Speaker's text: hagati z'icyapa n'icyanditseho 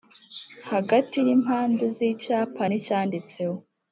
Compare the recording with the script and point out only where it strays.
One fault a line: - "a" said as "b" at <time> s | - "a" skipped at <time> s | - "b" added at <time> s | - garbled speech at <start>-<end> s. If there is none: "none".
- "y'impande" added at 1.2 s